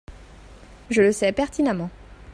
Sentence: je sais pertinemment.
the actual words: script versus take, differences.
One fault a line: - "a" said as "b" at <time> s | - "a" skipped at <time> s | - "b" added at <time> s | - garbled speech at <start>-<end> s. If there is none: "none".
- "le" added at 1.0 s